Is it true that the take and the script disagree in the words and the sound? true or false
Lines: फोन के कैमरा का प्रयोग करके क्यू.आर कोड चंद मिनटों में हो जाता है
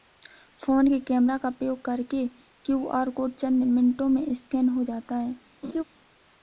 true